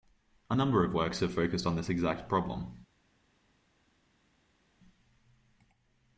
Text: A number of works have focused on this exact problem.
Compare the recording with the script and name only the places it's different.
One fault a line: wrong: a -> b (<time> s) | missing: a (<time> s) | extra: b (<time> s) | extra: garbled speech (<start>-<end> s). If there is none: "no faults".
no faults